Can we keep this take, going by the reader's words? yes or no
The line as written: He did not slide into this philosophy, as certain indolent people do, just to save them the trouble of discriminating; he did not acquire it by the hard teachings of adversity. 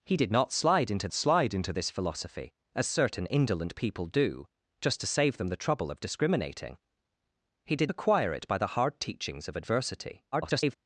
no